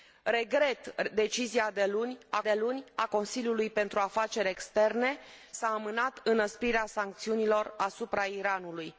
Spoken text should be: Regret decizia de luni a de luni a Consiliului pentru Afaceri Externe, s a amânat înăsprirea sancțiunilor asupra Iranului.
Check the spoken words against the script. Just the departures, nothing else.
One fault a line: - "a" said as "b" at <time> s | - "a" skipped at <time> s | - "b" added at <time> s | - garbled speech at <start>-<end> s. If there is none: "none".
none